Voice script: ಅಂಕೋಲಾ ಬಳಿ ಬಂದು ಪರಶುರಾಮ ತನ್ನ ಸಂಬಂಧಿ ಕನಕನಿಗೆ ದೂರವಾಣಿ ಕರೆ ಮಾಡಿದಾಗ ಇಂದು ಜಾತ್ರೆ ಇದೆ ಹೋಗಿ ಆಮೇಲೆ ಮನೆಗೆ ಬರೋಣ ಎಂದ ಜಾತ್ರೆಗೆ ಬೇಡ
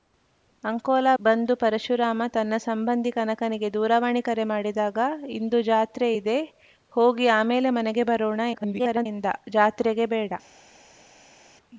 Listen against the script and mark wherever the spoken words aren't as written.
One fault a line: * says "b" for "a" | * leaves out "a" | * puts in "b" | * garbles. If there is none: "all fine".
* leaves out "ಬಳಿ"
* garbles